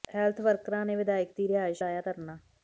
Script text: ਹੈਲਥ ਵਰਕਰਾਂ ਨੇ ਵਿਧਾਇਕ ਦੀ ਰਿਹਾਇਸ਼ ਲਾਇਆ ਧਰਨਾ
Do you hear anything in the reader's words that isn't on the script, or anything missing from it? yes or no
no